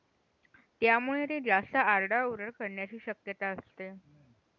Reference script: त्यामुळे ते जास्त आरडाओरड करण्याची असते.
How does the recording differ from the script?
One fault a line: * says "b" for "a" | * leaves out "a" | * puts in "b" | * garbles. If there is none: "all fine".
* puts in "शक्यता"